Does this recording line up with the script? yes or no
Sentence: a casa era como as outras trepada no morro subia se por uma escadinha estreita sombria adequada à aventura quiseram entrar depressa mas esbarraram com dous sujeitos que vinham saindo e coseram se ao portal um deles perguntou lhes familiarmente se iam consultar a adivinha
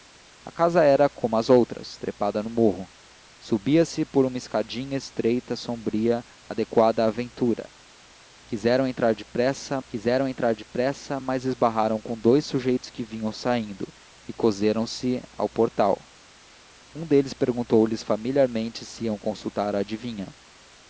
no